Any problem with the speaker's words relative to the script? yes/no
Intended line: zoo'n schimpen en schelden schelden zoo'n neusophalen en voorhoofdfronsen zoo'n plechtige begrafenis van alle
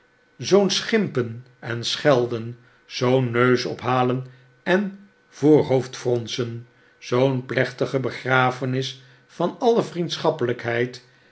yes